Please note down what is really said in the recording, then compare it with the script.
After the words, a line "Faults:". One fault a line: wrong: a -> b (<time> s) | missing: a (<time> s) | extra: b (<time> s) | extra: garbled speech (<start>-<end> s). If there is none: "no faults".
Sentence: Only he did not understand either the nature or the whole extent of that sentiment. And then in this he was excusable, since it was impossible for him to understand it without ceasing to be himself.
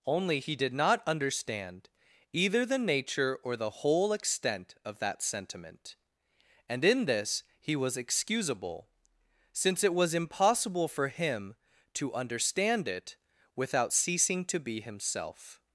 Only he did not understand either the nature or the whole extent of that sentiment. And in this he was excusable, since it was impossible for him to understand it without ceasing to be himself.
Faults:
missing: then (6.8 s)